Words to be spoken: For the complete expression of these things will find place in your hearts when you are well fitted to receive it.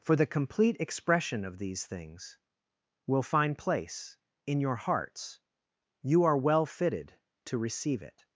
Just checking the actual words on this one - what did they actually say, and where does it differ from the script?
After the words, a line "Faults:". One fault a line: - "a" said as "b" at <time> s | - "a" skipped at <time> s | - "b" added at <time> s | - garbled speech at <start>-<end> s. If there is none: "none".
For the complete expression of these things will find place in your hearts you are well fitted to receive it.
Faults:
- "when" skipped at 5.4 s